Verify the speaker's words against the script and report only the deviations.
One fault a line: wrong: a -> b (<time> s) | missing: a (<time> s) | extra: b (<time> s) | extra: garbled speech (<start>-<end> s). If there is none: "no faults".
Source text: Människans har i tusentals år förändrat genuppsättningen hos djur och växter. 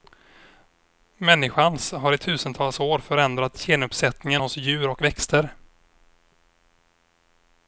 no faults